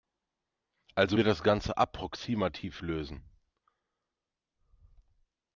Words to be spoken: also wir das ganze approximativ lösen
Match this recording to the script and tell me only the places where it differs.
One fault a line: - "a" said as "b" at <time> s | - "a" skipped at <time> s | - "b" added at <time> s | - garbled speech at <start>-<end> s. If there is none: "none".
none